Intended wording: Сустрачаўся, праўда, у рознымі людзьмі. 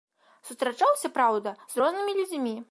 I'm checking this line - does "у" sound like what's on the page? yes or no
no